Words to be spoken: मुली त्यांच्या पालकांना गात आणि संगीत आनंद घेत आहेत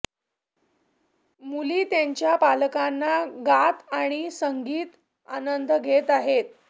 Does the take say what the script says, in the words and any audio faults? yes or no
yes